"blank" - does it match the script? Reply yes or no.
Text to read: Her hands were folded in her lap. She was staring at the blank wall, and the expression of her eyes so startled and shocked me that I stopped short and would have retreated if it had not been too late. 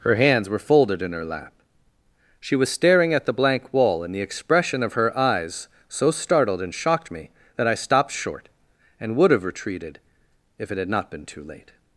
yes